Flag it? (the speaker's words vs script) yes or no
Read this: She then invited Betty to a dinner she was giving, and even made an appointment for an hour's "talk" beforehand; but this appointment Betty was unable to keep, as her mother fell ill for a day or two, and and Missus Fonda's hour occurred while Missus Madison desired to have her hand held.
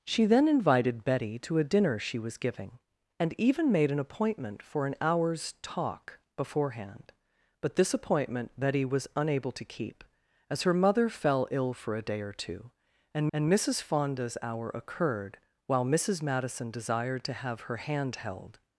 no